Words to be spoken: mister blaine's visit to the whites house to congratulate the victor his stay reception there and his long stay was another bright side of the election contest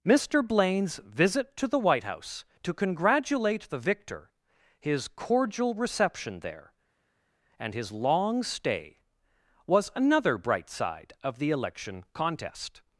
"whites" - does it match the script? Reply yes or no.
no